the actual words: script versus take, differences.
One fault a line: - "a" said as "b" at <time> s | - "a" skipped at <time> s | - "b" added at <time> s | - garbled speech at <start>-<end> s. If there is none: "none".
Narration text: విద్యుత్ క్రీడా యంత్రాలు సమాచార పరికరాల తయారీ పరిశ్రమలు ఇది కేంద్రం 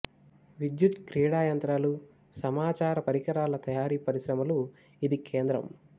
none